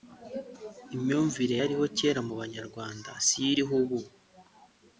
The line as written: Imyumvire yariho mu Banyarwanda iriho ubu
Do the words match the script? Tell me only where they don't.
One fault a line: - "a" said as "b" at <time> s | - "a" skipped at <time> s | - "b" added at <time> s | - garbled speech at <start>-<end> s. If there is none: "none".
- "kera" added at 2.0 s
- "siyo" added at 3.3 s